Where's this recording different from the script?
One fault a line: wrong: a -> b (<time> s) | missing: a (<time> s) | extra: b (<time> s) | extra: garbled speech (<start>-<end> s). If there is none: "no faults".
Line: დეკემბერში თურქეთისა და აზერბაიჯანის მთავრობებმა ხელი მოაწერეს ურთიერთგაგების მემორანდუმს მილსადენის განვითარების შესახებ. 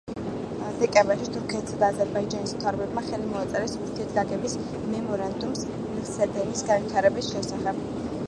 no faults